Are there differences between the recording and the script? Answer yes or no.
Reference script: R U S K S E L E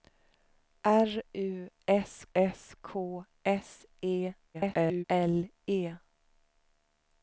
yes